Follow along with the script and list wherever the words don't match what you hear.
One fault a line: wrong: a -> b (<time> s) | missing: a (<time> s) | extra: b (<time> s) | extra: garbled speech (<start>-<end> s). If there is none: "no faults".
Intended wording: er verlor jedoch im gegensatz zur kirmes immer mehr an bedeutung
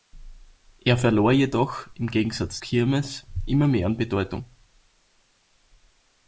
missing: zur (2.6 s)